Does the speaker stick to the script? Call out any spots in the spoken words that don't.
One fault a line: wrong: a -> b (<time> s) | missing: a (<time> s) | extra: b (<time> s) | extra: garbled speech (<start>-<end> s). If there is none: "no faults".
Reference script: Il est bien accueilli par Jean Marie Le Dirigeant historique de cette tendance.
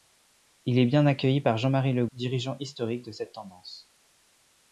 no faults